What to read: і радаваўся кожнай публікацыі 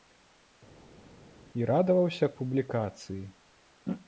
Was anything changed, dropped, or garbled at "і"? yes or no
no